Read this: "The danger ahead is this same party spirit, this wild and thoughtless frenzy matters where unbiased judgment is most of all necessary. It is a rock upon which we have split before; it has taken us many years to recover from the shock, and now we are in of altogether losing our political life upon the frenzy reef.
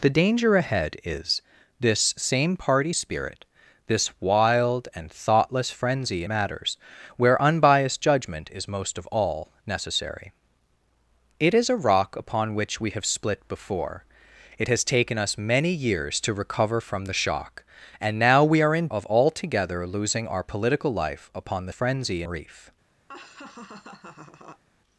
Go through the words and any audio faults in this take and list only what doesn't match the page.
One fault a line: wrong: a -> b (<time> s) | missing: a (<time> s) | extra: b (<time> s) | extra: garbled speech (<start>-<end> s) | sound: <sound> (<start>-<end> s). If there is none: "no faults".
sound: laugh (23.1-24.6 s)